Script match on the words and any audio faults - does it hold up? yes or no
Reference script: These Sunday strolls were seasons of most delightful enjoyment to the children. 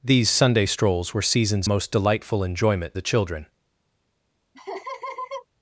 no